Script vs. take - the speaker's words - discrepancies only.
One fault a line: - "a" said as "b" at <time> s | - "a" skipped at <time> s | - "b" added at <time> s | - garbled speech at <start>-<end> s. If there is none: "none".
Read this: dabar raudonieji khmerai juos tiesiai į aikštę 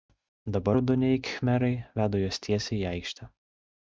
- "veda" added at 2.0 s